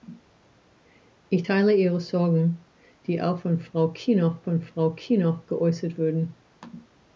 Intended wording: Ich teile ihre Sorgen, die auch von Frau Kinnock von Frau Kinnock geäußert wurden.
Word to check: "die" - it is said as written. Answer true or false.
true